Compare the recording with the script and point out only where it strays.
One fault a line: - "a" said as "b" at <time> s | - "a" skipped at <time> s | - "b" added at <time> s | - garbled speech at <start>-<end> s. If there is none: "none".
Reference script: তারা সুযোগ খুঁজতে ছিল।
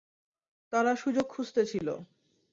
none